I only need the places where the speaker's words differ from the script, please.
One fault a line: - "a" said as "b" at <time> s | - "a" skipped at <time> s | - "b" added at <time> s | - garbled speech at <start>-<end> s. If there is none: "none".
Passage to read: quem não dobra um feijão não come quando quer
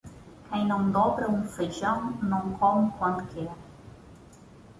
none